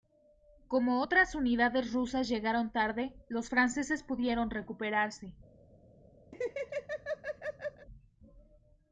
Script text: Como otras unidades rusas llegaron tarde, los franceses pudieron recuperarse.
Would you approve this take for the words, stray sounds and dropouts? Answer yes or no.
no